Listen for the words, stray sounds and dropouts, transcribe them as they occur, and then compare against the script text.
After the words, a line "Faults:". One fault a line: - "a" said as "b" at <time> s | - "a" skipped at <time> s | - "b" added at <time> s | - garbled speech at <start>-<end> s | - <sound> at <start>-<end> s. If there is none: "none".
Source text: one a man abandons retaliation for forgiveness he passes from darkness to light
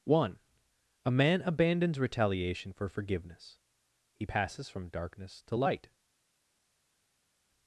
one a man abandons retaliation for forgiveness he passes from darkness to light
Faults:
none